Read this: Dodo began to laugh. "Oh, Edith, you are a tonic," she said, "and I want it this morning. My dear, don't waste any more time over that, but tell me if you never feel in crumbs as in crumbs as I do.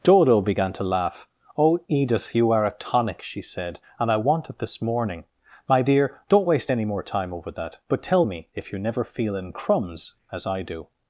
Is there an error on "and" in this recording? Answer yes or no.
no